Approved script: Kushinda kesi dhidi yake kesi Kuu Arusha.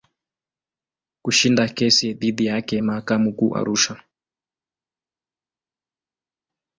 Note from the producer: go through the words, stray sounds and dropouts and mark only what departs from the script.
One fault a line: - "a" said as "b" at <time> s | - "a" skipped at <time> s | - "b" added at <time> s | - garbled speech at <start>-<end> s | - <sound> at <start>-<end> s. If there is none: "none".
- "kesi" said as "mahakama" at 2.8 s